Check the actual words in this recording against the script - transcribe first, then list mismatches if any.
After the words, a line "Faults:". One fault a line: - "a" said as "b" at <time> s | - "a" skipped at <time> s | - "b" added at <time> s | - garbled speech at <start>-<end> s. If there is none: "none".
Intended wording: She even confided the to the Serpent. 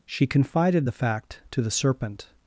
She confided the fact to the Serpent.
Faults:
- "even" skipped at 0.3 s
- "fact" added at 0.9 s